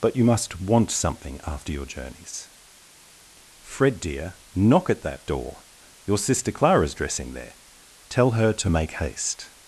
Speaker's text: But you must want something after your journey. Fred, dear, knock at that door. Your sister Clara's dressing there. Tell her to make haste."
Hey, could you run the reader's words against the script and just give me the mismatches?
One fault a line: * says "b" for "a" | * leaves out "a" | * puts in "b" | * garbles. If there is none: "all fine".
* says "journeys" for "journey"